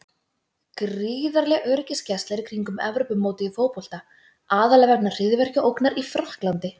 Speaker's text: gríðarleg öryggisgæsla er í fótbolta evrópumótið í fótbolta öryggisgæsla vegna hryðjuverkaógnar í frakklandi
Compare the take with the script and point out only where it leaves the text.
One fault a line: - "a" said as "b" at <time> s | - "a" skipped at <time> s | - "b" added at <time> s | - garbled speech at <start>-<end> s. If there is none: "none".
- "fótbolta" said as "kringum" at 2.4 s
- "öryggisgæsla" said as "aðallega" at 4.6 s